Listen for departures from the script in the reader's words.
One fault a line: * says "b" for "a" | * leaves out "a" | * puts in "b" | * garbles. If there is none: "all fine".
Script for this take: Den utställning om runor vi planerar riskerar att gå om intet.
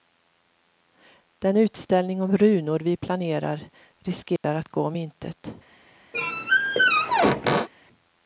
all fine